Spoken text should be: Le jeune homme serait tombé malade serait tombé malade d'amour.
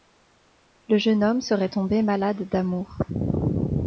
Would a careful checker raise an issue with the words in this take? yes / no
yes